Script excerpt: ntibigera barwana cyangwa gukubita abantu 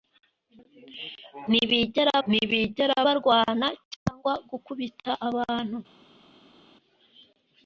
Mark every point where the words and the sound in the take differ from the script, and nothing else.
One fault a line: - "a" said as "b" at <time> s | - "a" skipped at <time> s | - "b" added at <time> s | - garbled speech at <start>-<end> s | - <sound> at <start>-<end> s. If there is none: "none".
- "ntibigera" added at 2.3 s